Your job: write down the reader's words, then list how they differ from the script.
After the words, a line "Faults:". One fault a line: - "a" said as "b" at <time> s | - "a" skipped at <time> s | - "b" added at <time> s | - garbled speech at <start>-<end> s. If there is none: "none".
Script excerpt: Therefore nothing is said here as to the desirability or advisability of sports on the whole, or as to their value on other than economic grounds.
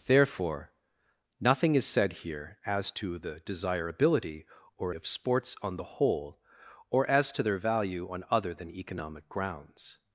Therefore nothing is said here as to the desirability or of sports on the whole, or as to their value on other than economic grounds.
Faults:
- "advisability" skipped at 4.9 s